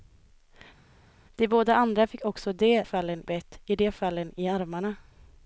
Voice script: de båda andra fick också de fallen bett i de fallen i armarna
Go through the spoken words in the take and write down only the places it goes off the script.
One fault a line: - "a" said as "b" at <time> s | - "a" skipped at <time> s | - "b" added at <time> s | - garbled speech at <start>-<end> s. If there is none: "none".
none